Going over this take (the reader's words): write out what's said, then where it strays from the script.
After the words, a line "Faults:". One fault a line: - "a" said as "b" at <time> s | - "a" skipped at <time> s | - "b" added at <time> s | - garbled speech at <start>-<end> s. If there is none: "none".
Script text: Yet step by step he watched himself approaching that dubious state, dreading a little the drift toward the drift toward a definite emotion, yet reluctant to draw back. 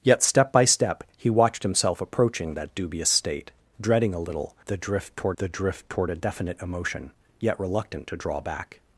Yet step by step he watched himself approaching that dubious state, dreading a little the drift toward the drift toward a definite emotion, yet reluctant to draw back.
Faults:
none